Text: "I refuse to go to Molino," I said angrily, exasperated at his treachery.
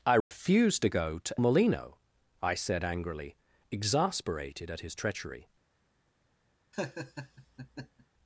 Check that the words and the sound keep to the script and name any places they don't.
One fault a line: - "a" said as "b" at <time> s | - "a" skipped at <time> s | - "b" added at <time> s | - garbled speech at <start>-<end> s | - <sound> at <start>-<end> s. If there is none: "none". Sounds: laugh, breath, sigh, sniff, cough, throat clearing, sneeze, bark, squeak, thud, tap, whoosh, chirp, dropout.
- dropout at 0.2-0.3 s
- laugh at 6.7-8.1 s